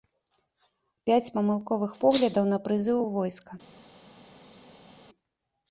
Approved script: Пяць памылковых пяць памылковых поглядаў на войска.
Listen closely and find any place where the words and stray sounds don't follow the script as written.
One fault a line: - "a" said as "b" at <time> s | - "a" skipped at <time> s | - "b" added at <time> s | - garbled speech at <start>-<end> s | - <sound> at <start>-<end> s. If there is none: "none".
- "пяць памылковых поглядаў на" said as "поглядаў на прызыў у" at 2.0 s